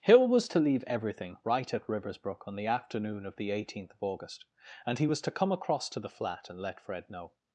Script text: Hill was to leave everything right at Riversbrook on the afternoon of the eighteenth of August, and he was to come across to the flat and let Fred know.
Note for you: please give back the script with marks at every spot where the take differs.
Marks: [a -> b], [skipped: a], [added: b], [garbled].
Hill was to leave everything right at Riversbrook on the afternoon of the eighteenth of August, and he was to come across to the flat and let Fred know.